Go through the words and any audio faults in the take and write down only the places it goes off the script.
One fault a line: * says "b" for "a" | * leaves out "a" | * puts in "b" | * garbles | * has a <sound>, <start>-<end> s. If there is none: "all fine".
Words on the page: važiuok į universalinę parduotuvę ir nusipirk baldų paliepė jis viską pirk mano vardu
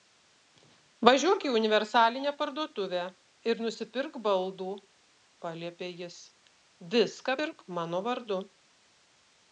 all fine